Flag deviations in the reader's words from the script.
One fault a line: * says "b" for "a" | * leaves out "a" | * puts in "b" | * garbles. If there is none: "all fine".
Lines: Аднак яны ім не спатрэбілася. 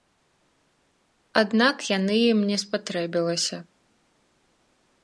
all fine